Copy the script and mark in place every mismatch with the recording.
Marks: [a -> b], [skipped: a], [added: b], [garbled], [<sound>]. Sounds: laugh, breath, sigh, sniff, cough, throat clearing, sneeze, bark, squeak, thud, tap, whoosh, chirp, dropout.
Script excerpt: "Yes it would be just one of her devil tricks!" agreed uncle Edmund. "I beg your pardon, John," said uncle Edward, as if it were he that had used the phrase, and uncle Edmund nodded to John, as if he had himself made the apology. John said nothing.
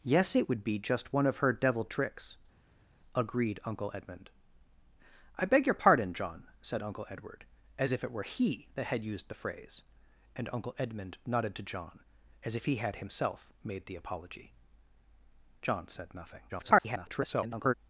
"Yes it would be just one of her devil tricks!" agreed uncle Edmund. "I beg your pardon, John," said uncle Edward, as if it were he that had used the phrase, and uncle Edmund nodded to John, as if he had himself made the apology. John said nothing. [garbled]